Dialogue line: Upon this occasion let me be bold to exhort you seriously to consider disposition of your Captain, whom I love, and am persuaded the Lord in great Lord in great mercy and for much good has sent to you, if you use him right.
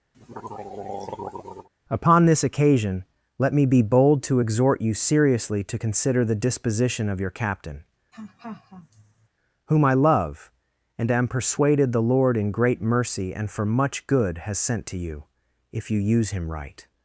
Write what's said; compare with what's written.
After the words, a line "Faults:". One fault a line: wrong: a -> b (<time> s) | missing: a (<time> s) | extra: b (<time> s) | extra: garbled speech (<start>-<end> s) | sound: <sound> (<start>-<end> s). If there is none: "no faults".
Upon this occasion let me be bold to exhort you seriously to consider the disposition of your Captain, whom I love, and am persuaded the Lord in great mercy and for much good has sent to you, if you use him right.
Faults:
sound: throat clearing (0.1-1.7 s)
extra: the (6.2 s)
sound: laugh (8.1-9.3 s)
missing: Lord in great (12.8 s)